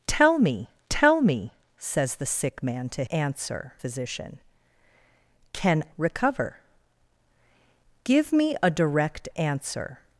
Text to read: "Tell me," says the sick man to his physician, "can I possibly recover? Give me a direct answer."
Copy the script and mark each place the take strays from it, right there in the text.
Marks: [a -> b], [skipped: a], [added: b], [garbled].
"Tell me," [added: tell me] says the sick man to [his -> answer] physician, "can [skipped: I possibly] recover? Give me a direct answer."